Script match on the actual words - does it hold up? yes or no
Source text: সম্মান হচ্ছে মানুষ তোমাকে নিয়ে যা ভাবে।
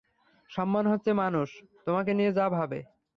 yes